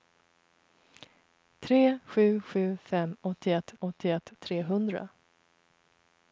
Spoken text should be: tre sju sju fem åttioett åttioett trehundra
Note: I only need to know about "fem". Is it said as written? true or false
true